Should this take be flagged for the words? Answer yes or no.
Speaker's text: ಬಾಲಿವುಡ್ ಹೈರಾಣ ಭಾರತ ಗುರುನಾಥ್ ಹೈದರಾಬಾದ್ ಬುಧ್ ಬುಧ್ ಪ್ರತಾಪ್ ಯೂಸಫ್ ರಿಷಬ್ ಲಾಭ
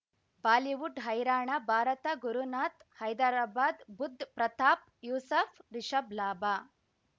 yes